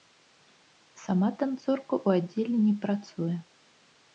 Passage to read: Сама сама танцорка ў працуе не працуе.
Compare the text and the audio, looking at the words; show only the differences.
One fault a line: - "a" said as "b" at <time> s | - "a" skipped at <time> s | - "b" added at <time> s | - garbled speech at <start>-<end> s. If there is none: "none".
- "сама" skipped at 1.3 s
- "працуе" said as "аддзеле" at 2.2 s